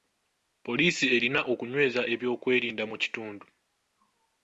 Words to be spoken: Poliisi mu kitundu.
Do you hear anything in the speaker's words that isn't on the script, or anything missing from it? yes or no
yes